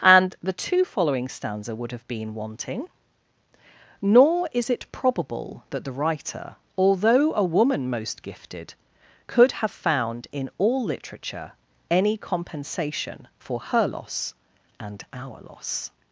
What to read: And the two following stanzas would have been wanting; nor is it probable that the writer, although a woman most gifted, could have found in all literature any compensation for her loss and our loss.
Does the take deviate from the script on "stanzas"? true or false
true